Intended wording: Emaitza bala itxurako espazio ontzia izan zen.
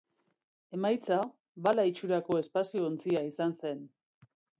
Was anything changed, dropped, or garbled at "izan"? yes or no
no